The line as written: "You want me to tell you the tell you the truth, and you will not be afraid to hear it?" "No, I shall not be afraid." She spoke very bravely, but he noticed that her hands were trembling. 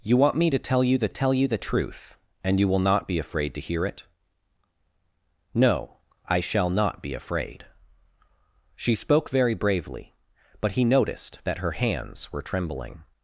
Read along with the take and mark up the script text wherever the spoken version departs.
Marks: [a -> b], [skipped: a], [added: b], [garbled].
"You want me to tell you the tell you the truth, and you will not be afraid to hear it?" "No, I shall not be afraid." She spoke very bravely, but he noticed that her hands were trembling.